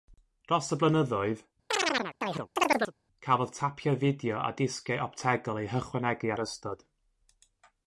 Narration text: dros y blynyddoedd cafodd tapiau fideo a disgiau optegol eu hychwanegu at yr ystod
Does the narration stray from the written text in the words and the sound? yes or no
yes